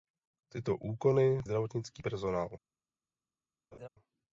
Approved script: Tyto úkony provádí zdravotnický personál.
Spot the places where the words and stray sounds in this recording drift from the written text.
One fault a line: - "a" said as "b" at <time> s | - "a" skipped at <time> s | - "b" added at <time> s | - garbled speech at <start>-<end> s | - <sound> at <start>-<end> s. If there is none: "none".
- "provádí" skipped at 1.4 s
- laugh at 3.7-3.9 s